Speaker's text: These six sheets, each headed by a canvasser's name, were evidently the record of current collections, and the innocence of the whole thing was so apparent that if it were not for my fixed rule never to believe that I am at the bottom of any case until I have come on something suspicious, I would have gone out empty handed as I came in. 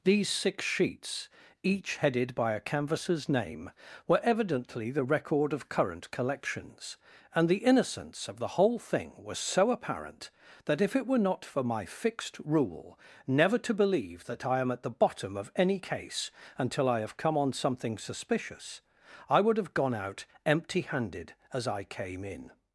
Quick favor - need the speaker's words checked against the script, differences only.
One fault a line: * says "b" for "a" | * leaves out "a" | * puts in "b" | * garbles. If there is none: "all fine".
all fine